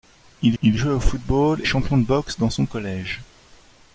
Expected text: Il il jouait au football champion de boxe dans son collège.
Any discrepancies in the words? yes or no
no